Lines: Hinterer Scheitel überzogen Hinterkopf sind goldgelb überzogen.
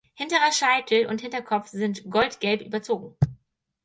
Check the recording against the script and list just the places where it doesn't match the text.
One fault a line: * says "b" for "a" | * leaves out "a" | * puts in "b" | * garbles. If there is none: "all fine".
* says "und" for "überzogen"